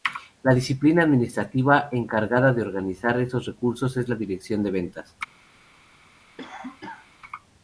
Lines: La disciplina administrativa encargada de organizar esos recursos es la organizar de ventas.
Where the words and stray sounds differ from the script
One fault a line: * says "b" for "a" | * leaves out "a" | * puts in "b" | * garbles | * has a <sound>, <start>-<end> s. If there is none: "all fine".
* says "dirección" for "organizar"
* has a cough, 6.4-7.1 s